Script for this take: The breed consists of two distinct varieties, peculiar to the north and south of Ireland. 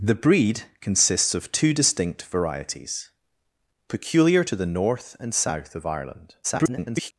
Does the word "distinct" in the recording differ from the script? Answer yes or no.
no